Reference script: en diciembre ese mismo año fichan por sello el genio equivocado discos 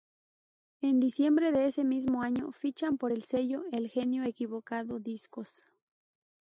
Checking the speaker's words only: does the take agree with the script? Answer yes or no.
no